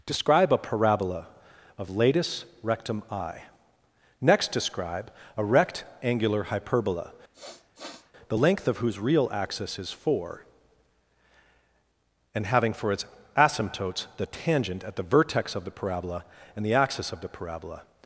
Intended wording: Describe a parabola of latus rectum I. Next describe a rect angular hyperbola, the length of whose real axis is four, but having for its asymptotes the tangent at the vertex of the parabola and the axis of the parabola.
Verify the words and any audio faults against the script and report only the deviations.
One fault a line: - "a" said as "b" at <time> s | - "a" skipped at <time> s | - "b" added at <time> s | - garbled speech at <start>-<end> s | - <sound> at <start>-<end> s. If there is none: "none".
- sniff at 7.3-8.1 s
- "but" said as "and" at 12.3 s